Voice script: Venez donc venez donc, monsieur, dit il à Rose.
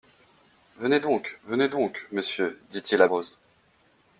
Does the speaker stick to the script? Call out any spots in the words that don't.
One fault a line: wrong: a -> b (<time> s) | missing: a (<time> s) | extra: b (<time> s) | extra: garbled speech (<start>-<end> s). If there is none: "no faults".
no faults